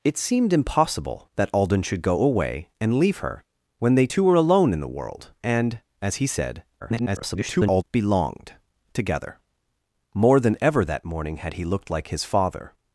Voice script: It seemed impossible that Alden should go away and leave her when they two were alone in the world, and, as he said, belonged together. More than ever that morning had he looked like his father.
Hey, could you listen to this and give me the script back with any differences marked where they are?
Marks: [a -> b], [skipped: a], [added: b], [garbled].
It seemed impossible that Alden should go away and leave her when they two were alone in the world, and, as he said, [garbled] belonged together. More than ever that morning had he looked like his father.